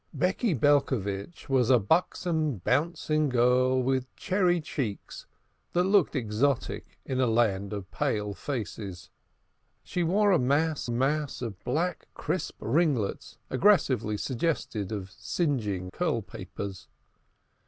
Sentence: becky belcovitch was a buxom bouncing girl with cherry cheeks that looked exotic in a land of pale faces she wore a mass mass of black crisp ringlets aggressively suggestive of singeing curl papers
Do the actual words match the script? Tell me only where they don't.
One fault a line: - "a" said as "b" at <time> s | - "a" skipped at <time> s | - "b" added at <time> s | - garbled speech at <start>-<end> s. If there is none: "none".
none